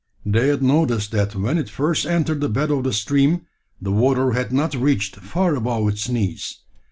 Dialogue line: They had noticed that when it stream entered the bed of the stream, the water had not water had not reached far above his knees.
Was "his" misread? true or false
true